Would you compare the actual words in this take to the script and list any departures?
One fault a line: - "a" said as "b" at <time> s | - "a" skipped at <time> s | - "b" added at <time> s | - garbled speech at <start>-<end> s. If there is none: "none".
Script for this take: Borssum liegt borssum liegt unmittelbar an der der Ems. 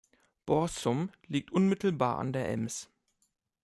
- "borssum liegt" skipped at 1.5 s
- "der" skipped at 2.5 s